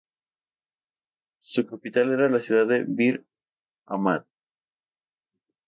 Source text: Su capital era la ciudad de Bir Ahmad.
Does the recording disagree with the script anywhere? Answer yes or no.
no